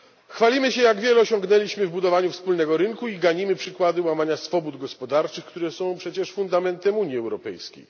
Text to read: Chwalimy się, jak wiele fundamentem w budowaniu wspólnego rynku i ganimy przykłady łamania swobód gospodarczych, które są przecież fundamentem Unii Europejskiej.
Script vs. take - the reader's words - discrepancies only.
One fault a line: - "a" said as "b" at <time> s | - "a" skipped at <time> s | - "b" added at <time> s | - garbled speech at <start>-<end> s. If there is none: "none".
- "fundamentem" said as "osiągnęliśmy" at 1.2 s